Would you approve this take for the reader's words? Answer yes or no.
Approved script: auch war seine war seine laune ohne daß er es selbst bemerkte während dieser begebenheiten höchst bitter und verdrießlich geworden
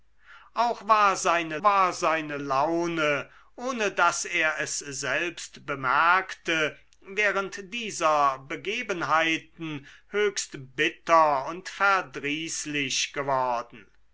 yes